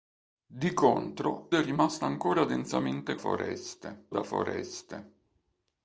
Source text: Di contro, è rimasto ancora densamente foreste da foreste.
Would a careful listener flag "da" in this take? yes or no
no